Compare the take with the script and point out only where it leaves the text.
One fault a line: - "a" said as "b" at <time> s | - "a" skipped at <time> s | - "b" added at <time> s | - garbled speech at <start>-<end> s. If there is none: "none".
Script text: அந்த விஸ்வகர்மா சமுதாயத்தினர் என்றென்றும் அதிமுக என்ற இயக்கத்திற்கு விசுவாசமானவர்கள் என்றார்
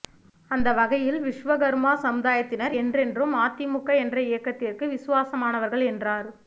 - "வகையில்" added at 0.7 s